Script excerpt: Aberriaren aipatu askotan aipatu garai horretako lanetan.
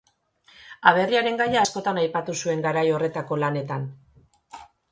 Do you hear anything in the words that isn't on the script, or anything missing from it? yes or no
yes